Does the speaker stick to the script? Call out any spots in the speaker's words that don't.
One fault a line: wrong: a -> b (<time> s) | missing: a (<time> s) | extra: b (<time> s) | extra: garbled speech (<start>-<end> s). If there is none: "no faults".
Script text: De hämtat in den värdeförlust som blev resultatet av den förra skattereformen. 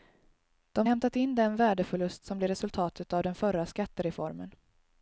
no faults